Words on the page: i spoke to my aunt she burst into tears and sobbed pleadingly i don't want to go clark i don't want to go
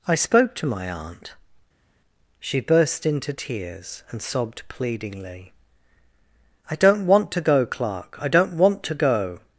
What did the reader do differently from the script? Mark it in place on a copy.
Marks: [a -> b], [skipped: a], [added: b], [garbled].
i spoke to my aunt she burst into tears and sobbed pleadingly i don't want to go clark i don't want to go